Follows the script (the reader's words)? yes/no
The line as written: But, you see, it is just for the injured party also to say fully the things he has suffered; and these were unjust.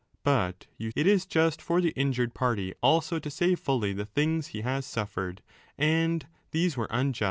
no